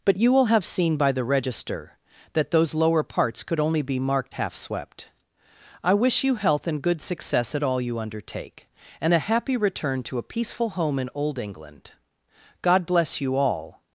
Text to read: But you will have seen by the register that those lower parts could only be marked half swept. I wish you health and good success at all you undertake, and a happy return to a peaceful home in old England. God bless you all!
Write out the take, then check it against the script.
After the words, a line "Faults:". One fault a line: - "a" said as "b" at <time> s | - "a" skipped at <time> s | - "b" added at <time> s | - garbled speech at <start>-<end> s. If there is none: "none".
But you will have seen by the register that those lower parts could only be marked half swept. I wish you health and good success at all you undertake, and a happy return to a peaceful home in old England. God bless you all!
Faults:
none